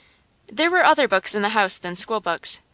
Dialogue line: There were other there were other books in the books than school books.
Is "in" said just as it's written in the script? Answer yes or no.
yes